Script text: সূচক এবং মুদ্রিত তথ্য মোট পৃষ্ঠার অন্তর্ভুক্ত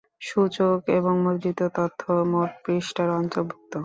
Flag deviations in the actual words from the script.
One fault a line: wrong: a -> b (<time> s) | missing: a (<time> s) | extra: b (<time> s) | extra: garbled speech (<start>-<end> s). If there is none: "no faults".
no faults